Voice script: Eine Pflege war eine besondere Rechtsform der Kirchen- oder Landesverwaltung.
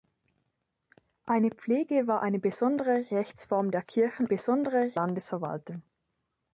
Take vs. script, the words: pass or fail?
fail